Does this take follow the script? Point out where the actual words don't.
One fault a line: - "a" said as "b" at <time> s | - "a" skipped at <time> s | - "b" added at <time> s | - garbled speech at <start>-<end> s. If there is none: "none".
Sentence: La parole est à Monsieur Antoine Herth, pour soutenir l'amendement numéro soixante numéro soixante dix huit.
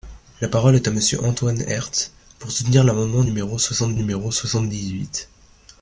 none